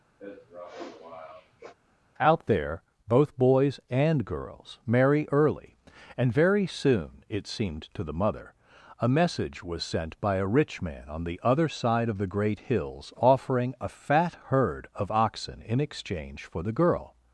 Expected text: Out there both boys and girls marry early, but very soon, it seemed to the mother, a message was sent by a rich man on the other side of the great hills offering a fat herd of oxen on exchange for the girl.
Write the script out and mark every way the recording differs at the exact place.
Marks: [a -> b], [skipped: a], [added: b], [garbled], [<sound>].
[sniff] Out there both boys and girls marry early, [but -> and] very soon, it seemed to the mother, a message was sent by a rich man on the other side of the great hills offering a fat herd of oxen [on -> in] exchange for the girl.